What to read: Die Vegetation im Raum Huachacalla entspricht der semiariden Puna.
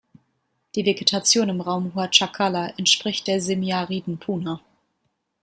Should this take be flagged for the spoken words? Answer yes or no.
no